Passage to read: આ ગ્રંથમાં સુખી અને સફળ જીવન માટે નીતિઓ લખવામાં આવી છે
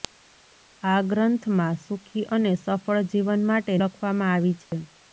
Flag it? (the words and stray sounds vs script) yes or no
yes